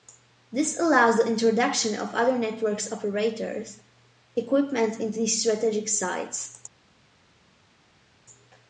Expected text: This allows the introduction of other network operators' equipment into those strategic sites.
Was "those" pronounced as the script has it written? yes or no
no